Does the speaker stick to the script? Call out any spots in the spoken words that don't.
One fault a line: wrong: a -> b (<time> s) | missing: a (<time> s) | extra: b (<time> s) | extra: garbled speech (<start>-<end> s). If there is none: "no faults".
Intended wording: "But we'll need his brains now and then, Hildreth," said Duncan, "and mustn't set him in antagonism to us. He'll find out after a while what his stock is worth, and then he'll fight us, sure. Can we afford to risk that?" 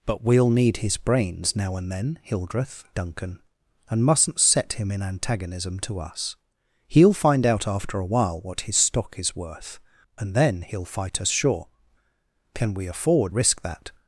missing: said (2.9 s)
missing: to (13.3 s)